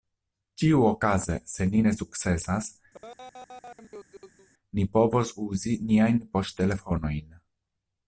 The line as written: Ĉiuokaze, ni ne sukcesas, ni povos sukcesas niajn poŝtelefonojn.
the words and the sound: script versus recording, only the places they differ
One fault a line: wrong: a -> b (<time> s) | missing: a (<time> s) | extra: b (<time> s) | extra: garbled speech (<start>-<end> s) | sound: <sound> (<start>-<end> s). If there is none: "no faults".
extra: se (1.6 s)
sound: laugh (2.9-4.5 s)
wrong: sukcesas -> uzi (5.5 s)